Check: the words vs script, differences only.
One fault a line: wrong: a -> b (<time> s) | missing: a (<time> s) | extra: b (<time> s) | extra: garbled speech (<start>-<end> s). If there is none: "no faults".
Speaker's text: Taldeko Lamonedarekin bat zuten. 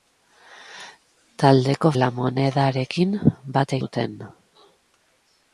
no faults